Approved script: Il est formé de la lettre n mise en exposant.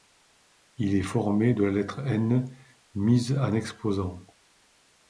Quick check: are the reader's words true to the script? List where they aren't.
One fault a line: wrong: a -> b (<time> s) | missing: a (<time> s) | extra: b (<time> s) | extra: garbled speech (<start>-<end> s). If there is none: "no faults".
no faults